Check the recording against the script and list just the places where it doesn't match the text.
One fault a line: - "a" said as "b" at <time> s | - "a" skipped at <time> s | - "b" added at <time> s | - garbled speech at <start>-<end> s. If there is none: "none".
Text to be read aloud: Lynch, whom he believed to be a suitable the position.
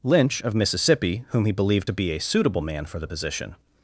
- "of Mississippi" added at 0.4 s
- "man for" added at 2.6 s